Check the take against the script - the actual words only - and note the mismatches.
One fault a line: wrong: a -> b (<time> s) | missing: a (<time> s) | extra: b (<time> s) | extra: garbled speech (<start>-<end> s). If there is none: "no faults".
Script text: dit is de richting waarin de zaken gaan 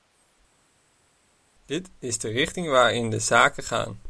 no faults